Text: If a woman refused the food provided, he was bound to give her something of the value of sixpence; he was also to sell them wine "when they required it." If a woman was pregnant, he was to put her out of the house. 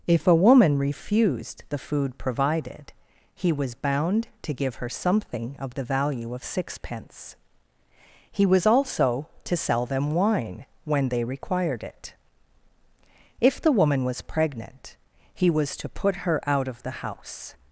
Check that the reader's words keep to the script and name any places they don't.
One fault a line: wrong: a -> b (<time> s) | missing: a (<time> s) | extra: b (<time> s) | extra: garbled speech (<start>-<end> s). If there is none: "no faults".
wrong: a -> the (13.6 s)